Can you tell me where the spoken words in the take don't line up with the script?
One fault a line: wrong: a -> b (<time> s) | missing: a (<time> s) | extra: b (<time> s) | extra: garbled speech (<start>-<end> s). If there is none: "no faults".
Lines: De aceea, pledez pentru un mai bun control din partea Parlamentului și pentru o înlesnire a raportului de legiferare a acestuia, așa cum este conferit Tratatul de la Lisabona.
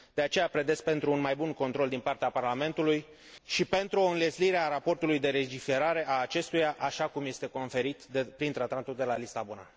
extra: prin (8.4 s)